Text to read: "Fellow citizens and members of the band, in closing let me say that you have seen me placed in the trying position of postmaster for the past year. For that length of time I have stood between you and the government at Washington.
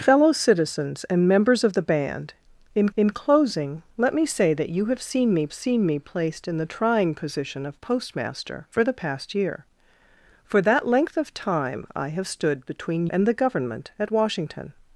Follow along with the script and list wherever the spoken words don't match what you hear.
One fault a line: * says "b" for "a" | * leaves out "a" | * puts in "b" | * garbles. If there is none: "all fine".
* puts in "in"
* puts in "seen me"
* leaves out "you"